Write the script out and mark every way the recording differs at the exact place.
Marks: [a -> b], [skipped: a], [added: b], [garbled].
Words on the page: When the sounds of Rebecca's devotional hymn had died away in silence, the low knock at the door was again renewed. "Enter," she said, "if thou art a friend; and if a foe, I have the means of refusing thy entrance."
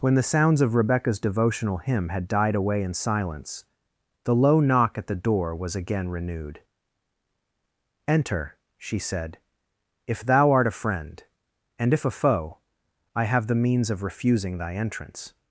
When the sounds of Rebecca's devotional hymn had died away in silence, the low knock at the door was again renewed. "Enter," she said, "if thou art a friend; and if a foe, I have the means of refusing thy entrance."